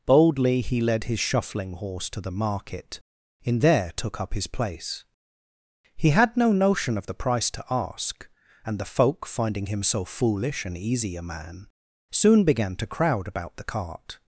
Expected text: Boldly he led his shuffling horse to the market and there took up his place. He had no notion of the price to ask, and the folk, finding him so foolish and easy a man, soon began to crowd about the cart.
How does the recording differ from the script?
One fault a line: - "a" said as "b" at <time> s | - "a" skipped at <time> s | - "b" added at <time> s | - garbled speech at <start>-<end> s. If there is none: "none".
- "and" said as "in" at 3.4 s